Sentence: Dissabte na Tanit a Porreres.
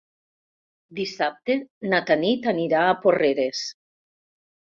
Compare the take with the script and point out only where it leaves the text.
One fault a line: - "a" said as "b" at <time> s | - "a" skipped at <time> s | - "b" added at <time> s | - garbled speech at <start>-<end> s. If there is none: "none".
- "anirà" added at 2.5 s